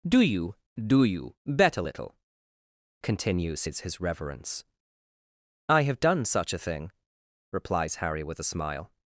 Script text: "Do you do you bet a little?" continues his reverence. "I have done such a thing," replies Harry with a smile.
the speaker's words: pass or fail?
fail